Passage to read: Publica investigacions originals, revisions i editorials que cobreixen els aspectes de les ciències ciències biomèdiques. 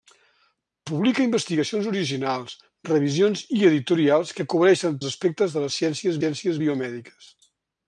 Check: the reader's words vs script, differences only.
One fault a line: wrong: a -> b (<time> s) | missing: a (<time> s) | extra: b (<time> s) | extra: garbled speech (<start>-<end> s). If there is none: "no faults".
no faults